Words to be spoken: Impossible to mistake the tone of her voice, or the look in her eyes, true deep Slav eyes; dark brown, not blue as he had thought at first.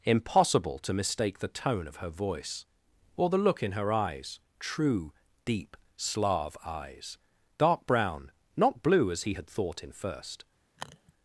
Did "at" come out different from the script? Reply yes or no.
yes